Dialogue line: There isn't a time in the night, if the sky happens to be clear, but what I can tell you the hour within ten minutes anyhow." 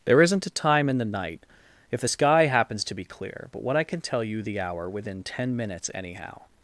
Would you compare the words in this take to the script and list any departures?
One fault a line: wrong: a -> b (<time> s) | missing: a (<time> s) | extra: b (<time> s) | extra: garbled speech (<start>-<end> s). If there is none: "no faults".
no faults